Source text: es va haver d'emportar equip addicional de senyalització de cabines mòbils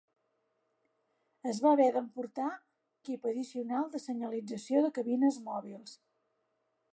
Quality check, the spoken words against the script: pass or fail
pass